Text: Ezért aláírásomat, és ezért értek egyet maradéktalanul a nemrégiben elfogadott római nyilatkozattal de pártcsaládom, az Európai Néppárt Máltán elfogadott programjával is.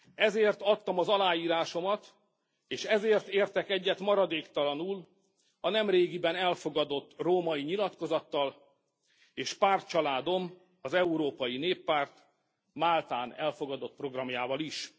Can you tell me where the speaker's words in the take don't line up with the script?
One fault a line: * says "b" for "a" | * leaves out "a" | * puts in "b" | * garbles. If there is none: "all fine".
* puts in "adtam az"
* says "és" for "de"